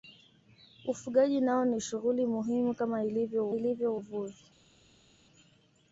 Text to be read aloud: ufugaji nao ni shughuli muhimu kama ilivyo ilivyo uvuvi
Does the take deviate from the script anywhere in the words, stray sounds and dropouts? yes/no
no